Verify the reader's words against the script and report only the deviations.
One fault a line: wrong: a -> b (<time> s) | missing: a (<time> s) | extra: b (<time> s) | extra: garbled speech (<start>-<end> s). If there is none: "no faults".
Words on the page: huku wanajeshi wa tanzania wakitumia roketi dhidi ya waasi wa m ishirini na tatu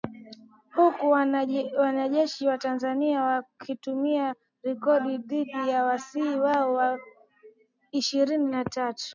extra: hao (6.2 s)